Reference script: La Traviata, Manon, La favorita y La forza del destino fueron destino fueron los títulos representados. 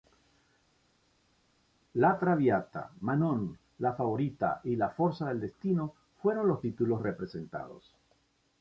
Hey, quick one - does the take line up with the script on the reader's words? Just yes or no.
no